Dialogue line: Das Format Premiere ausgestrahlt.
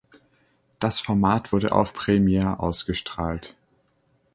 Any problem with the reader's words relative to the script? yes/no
yes